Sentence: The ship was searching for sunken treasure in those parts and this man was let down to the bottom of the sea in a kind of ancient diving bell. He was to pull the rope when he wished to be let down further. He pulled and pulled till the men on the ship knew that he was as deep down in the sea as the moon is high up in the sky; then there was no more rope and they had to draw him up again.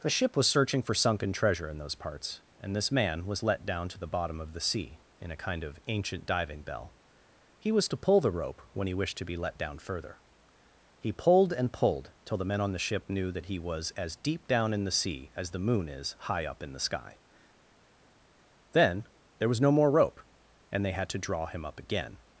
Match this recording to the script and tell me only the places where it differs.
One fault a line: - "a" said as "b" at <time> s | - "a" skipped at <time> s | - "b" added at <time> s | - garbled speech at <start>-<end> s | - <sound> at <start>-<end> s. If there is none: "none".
none